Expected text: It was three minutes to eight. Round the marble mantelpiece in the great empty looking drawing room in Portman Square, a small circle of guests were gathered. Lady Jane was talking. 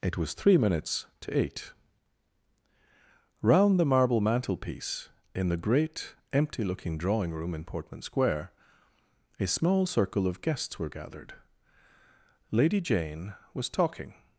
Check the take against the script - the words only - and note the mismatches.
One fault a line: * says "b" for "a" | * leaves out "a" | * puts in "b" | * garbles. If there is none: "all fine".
all fine